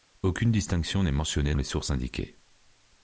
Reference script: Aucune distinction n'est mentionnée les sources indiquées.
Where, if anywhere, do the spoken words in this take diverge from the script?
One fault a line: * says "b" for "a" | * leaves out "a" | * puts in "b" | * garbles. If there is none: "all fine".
all fine